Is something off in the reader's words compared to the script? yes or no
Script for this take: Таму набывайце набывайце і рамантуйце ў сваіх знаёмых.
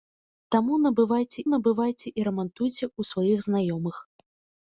no